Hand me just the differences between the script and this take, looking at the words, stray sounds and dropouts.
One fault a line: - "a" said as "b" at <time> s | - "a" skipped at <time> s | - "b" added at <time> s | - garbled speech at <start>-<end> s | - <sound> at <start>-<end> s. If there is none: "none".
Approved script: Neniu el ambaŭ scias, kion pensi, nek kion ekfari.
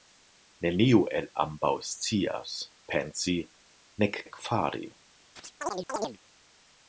- "kion" skipped at 2.5 s
- "kion" skipped at 4.2 s
- chirp at 5.4-6.2 s